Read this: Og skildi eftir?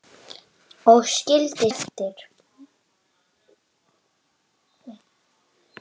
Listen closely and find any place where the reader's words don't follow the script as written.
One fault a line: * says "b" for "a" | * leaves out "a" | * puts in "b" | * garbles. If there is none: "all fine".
all fine